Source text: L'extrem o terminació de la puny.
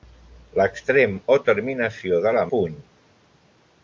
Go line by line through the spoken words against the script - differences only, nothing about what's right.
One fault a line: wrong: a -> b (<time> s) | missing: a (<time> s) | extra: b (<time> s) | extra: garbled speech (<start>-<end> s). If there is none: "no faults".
no faults